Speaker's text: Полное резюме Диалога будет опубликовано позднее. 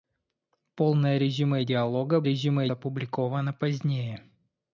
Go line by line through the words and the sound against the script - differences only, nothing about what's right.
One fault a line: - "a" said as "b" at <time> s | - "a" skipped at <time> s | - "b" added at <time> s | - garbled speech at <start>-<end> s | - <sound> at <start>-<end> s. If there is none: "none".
- "будет" said as "резюме" at 2.2 s